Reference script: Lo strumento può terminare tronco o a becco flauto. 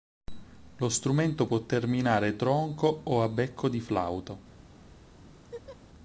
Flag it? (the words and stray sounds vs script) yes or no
yes